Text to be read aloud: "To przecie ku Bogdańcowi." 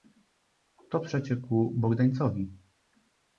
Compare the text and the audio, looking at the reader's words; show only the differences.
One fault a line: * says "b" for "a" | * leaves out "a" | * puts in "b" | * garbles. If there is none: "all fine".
all fine